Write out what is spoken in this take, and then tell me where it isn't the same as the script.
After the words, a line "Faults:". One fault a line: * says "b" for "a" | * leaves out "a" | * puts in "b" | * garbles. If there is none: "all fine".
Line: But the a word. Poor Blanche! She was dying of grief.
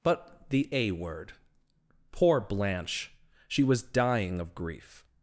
But the a word. Poor Blanche! She was dying of grief.
Faults:
all fine